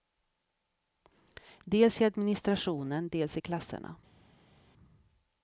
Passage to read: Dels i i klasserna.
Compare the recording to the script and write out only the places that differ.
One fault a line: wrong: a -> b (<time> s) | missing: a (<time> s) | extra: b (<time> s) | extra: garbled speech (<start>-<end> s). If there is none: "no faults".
extra: administrationen dels (2.1 s)